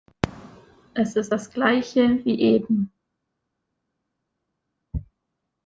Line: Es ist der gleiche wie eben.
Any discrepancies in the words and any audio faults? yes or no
yes